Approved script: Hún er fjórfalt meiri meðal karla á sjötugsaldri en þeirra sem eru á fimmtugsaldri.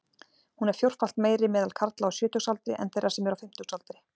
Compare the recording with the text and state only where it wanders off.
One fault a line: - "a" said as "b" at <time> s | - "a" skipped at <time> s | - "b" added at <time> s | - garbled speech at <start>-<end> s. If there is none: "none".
none